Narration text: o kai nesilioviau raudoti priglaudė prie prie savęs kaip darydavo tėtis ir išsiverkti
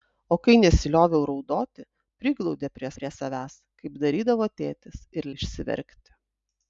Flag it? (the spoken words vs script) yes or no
no